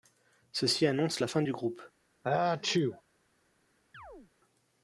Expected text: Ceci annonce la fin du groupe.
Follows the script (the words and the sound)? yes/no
no